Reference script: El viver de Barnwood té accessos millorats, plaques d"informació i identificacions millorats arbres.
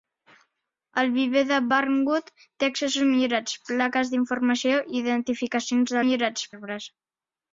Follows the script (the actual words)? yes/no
yes